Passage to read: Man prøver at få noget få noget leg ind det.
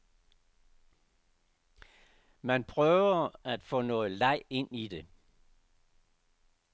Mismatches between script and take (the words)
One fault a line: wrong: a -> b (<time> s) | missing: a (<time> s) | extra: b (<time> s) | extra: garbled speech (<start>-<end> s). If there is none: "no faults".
missing: få noget (4.1 s)
extra: i (4.7 s)